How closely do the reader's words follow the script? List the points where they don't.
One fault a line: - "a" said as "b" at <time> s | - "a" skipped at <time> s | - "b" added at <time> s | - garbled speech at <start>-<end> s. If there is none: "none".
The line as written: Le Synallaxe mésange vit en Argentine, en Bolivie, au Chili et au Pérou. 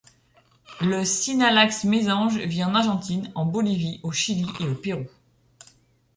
none